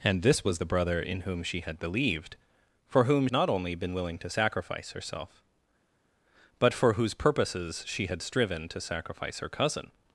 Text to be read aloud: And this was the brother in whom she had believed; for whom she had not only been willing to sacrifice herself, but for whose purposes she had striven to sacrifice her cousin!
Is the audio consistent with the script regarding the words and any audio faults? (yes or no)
no